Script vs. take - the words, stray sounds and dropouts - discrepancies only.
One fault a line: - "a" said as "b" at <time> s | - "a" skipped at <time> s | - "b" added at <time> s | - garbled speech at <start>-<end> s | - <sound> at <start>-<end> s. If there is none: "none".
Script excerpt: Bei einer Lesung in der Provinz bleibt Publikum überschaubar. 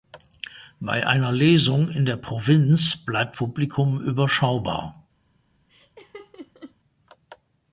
- laugh at 5.7-6.8 s